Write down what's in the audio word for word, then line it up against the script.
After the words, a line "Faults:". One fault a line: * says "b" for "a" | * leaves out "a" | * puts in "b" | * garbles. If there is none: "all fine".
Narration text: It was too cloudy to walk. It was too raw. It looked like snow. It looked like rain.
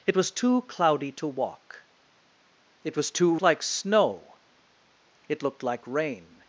It was too cloudy to walk. It was too like snow. It looked like rain.
Faults:
* leaves out "raw It looked"